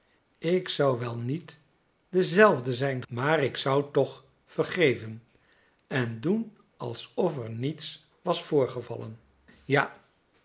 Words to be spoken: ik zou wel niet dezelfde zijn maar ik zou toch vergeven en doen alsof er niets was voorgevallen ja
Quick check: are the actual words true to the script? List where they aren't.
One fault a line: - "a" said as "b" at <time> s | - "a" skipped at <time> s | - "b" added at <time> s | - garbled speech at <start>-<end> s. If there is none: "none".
none